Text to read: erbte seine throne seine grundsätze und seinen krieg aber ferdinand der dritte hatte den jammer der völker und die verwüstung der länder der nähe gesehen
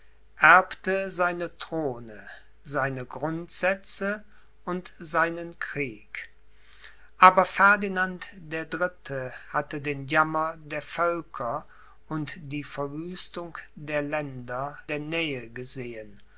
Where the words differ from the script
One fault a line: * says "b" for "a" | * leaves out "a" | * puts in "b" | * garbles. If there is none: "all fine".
all fine